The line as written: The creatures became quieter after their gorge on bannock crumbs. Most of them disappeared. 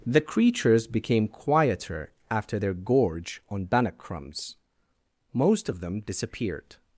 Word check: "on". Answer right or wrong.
right